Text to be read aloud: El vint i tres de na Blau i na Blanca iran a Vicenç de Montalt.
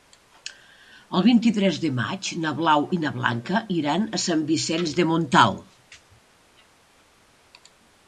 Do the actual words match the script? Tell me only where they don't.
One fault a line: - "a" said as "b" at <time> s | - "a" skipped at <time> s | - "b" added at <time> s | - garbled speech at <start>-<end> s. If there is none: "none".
- "maig" added at 2.0 s
- "Sant" added at 4.3 s